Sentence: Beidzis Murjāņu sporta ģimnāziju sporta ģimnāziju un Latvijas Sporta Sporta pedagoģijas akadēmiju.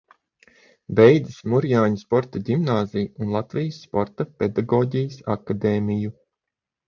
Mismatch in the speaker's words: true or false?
true